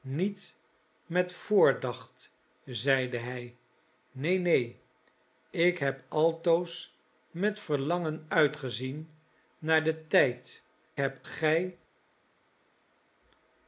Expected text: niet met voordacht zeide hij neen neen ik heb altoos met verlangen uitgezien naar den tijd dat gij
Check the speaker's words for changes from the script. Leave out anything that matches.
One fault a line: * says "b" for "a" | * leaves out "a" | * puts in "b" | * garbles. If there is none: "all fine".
* says "heb" for "dat"